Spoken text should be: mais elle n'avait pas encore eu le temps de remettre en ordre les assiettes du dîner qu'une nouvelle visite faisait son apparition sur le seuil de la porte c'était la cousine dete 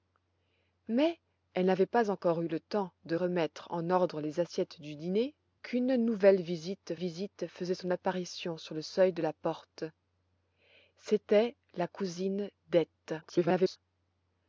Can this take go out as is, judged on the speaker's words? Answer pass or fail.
fail